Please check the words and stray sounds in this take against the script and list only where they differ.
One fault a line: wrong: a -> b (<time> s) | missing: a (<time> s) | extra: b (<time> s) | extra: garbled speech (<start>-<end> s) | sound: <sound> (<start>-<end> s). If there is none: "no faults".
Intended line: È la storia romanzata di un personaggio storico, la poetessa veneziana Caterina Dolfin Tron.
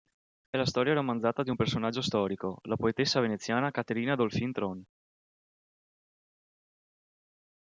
no faults